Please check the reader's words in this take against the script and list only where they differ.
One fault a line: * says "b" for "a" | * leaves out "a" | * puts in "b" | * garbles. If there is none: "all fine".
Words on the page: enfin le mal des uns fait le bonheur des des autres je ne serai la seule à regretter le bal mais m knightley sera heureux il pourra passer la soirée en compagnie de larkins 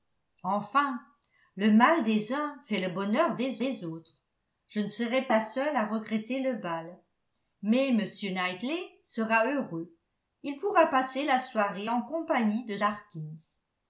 all fine